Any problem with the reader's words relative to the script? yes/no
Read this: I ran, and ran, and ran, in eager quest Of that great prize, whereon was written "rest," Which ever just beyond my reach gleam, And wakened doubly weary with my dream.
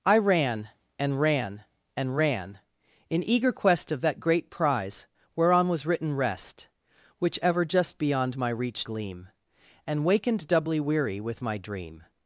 no